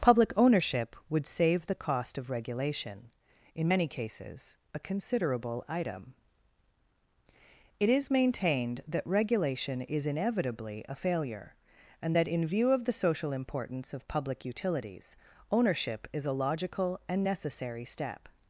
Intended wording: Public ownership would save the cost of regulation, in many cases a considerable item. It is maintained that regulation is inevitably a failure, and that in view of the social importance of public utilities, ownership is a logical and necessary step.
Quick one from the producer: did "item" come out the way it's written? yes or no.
yes